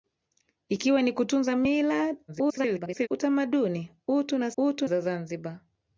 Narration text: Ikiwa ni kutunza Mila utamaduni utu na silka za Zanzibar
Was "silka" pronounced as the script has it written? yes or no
no